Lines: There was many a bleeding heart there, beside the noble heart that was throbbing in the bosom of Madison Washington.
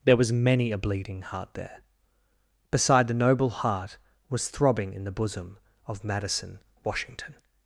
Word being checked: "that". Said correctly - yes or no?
no